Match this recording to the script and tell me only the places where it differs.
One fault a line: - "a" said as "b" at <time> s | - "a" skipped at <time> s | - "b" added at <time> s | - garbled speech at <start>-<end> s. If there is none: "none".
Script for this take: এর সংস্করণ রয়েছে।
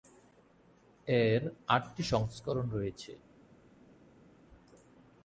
- "আটটি" added at 1.7 s